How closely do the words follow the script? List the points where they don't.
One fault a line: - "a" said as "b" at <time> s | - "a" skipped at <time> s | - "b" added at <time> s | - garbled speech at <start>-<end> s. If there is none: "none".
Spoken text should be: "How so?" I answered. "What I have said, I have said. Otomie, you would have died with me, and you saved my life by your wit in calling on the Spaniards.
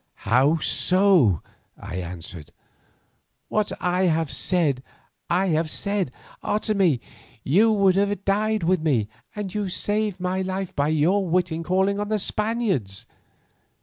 none